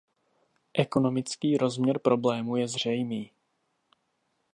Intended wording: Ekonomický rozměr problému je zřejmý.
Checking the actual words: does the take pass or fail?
pass